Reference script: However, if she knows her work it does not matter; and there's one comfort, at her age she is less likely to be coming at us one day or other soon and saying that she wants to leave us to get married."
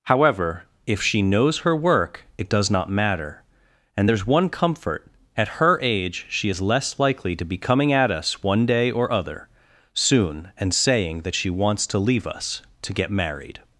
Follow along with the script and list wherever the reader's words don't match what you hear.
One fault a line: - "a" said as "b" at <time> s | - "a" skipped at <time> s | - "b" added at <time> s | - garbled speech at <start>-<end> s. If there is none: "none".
none